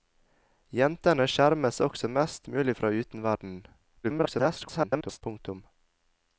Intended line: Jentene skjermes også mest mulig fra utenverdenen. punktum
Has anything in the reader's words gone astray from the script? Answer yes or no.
yes